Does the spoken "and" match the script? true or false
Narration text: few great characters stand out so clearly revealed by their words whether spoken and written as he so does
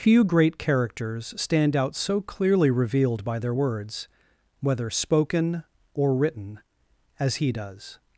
false